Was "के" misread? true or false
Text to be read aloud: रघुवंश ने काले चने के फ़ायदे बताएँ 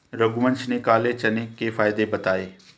false